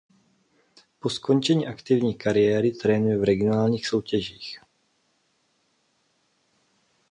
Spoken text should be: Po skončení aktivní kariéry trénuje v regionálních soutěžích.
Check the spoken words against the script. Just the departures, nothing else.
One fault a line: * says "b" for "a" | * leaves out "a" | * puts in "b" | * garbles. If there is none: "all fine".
all fine